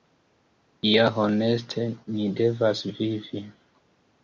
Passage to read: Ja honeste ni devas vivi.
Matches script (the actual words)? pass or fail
pass